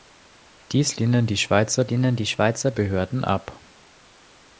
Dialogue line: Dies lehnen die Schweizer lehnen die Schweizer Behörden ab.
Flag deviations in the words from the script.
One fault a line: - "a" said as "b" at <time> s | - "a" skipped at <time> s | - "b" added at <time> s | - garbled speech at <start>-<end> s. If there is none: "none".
none